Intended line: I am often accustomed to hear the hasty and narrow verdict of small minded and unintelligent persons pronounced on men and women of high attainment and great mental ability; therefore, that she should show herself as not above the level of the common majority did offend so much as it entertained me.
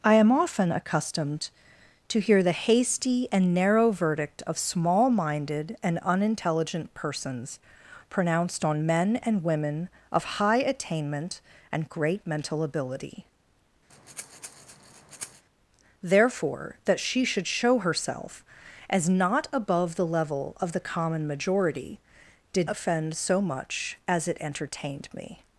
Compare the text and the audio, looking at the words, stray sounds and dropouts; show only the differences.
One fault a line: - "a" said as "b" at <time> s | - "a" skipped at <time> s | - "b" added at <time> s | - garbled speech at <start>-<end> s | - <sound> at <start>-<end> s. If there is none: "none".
- breath at 13.9-15.4 s